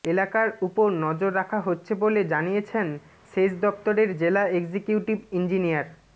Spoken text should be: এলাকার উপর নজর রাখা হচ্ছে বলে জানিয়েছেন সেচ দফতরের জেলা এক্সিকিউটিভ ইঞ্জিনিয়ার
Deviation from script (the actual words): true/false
false